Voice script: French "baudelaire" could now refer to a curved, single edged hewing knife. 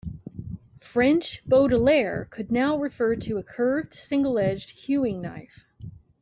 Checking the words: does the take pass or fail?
pass